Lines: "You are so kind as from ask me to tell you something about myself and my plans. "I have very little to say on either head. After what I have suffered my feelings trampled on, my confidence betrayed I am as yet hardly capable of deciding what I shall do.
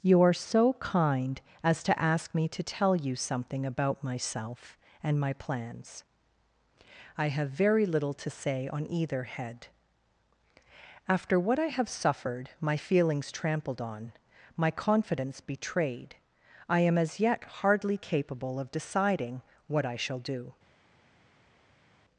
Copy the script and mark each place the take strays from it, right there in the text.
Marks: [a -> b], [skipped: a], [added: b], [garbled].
"You are so kind as [from -> to] ask me to tell you something about myself and my plans. "I have very little to say on either head. After what I have suffered my feelings trampled on, my confidence betrayed I am as yet hardly capable of deciding what I shall do.